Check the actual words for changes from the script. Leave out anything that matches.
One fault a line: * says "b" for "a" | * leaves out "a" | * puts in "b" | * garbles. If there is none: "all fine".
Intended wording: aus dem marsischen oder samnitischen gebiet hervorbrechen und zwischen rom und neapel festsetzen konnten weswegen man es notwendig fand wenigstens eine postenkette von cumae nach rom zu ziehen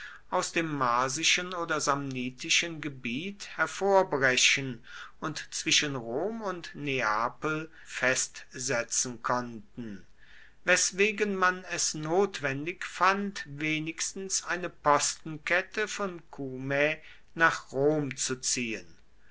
all fine